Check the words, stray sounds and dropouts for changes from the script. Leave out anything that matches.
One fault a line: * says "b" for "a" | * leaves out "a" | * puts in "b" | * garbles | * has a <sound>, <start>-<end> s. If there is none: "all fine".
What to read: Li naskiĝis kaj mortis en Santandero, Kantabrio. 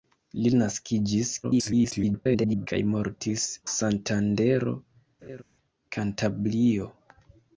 * garbles
* leaves out "en"
* has a laugh, 5.2-5.4 s